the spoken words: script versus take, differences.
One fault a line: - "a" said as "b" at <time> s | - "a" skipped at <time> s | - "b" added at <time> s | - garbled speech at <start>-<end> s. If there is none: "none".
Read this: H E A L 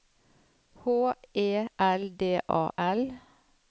- "L D" added at 1.8 s